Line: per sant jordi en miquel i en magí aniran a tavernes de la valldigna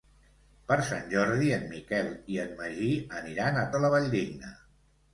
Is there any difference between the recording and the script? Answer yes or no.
yes